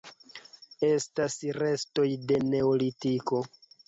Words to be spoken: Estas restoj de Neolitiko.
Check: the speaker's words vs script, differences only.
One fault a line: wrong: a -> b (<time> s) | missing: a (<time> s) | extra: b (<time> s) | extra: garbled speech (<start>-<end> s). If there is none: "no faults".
no faults